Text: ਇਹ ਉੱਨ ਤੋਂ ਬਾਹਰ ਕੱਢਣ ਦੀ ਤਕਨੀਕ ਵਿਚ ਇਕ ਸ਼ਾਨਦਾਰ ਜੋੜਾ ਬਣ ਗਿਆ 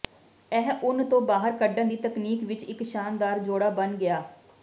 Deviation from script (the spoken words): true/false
false